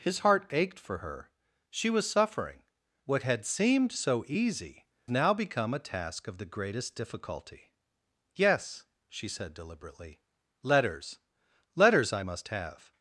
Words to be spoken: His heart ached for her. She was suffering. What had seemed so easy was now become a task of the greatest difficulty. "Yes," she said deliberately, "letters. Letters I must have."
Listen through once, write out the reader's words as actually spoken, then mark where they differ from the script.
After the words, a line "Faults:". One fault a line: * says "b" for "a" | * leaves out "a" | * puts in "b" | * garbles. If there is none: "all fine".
His heart ached for her. She was suffering. What had seemed so easy now become a task of the greatest difficulty. "Yes," she said deliberately, "letters. Letters I must have."
Faults:
* leaves out "was"